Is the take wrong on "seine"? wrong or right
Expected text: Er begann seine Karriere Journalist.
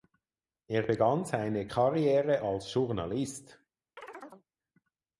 right